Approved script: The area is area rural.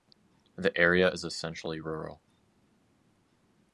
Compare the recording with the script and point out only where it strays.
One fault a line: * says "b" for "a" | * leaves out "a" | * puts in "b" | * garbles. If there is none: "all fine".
* says "essentially" for "area"